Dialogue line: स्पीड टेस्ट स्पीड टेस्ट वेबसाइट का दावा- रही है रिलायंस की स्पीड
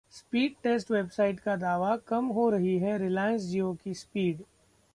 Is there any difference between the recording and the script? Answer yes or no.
yes